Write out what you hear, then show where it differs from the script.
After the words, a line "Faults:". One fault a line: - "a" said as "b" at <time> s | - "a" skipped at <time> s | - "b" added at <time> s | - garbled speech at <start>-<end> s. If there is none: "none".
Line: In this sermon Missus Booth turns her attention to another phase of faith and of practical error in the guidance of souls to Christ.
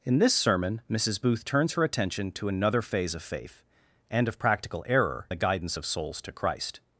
In this sermon Missus Booth turns her attention to another phase of faith and of practical error the guidance of souls to Christ.
Faults:
- "in" skipped at 5.3 s